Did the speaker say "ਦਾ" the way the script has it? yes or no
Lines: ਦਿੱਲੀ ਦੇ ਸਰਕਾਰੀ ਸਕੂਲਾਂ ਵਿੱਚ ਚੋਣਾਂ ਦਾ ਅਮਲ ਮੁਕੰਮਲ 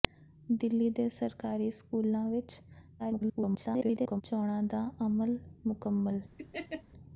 yes